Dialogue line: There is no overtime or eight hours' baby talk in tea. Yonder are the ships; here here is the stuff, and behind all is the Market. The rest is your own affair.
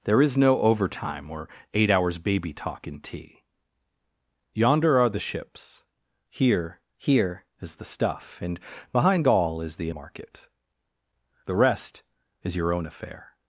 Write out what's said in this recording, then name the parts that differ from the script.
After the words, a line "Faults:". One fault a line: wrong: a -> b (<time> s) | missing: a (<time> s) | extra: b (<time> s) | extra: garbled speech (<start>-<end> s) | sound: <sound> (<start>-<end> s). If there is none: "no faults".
There is no overtime or eight hours' baby talk in tea. Yonder are the ships; here here is the stuff, and behind all is the Market. The rest is your own affair.
Faults:
no faults